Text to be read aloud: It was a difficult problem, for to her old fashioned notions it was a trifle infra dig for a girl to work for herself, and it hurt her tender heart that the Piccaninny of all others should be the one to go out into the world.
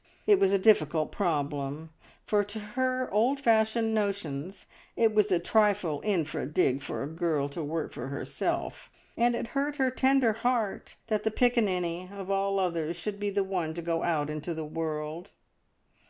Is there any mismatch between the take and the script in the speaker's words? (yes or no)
no